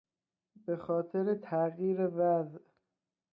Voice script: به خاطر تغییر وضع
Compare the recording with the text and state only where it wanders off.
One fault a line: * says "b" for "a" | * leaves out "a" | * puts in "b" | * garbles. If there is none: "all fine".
all fine